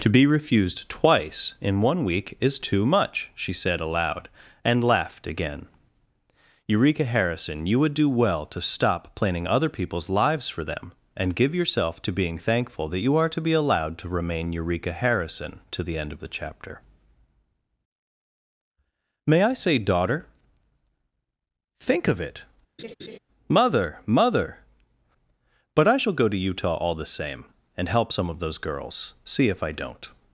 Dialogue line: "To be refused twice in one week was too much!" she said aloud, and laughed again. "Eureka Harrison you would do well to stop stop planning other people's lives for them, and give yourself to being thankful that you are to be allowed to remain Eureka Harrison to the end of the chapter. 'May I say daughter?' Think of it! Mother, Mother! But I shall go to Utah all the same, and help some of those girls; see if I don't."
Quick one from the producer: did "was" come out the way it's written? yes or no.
no